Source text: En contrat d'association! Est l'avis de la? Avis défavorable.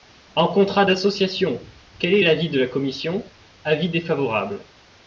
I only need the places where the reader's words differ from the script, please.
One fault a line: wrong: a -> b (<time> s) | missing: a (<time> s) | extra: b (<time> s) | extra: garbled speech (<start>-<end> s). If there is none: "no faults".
extra: Quel (2.0 s)
extra: commission (2.7 s)